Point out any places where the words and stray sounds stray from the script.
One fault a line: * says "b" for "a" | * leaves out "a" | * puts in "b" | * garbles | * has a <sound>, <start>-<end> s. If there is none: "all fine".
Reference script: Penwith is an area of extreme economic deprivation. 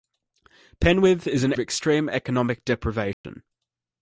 * leaves out "area"
* has a dropout, 3.1-3.2 s